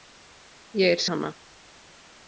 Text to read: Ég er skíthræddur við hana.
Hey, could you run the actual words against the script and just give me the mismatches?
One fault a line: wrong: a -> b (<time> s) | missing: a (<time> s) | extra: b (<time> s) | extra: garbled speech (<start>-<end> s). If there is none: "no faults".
missing: skíthræddur við (1.0 s)